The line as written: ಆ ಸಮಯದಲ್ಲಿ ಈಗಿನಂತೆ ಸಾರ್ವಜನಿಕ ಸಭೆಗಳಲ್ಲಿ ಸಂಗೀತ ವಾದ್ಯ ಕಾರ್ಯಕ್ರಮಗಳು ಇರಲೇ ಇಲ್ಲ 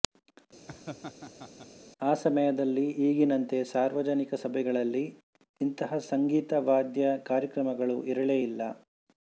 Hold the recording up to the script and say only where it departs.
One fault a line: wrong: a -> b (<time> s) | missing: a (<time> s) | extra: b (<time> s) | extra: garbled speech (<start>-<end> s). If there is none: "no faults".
extra: ಇಂತಹ (5.6 s)